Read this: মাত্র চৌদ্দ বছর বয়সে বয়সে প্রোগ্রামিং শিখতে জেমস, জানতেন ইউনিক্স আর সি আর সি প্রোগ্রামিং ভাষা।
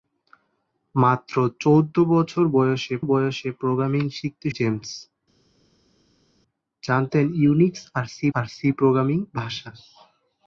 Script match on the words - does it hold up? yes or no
yes